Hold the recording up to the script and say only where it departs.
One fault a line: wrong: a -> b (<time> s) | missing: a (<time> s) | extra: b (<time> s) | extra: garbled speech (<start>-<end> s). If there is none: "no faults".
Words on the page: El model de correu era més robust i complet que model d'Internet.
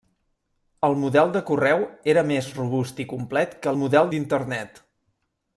no faults